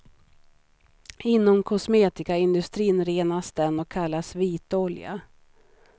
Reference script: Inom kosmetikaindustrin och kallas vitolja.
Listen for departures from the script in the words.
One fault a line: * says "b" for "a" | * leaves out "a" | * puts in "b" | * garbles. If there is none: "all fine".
* puts in "renas den"